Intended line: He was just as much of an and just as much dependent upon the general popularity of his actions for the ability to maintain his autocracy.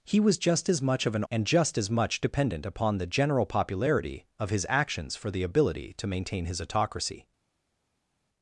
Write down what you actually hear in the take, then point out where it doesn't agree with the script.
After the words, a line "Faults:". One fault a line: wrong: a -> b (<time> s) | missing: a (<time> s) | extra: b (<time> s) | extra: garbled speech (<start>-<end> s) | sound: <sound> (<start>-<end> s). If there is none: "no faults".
He was just as much of an and just as much dependent upon the general popularity of his actions for the ability to maintain his autocracy.
Faults:
no faults